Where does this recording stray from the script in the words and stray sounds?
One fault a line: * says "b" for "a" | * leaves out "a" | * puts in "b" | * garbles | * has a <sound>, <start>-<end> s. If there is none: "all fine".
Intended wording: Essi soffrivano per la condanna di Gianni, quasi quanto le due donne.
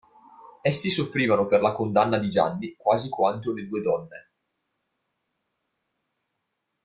all fine